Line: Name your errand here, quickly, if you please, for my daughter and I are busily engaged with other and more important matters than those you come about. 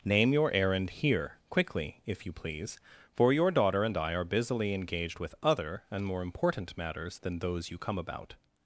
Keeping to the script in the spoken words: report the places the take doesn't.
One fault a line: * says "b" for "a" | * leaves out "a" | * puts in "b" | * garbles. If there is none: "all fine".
* says "your" for "my"